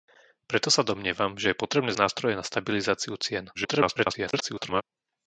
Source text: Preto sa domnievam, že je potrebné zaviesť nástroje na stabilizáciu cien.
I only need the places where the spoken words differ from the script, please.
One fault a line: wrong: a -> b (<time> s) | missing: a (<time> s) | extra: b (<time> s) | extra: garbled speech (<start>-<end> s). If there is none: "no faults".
missing: zaviesť (1.9 s)
extra: garbled speech (3.5-4.8 s)